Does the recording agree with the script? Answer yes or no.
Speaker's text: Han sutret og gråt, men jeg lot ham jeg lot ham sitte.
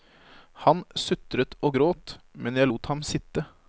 no